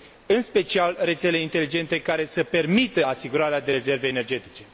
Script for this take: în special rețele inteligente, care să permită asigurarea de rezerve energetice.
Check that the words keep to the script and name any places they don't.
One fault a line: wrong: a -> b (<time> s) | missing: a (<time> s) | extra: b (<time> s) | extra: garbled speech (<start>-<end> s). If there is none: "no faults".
no faults